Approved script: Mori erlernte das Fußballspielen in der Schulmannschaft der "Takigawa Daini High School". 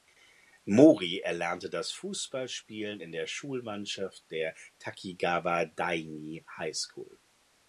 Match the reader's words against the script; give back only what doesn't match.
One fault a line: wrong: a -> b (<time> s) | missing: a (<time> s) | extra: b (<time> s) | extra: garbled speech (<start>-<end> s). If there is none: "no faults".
no faults